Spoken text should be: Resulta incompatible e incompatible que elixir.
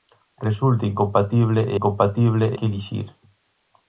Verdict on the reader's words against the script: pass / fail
pass